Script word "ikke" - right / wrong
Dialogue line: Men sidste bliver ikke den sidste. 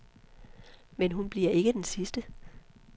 right